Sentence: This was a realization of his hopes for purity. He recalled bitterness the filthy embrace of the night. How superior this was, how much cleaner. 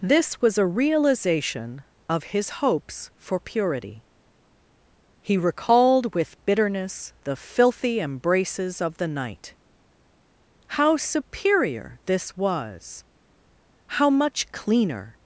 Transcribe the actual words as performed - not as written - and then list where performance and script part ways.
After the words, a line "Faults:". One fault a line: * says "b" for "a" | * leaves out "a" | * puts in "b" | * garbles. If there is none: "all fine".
This was a realization of his hopes for purity. He recalled with bitterness the filthy embraces of the night. How superior this was, how much cleaner.
Faults:
* puts in "with"
* says "embraces" for "embrace"